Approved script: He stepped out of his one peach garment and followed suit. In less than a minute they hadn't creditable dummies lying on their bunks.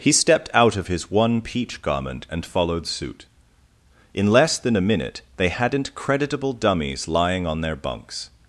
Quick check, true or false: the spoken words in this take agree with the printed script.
true